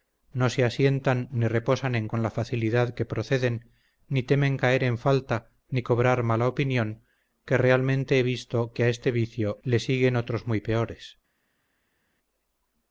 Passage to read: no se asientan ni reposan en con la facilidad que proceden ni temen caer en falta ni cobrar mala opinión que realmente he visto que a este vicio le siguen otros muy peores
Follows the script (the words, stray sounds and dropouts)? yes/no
yes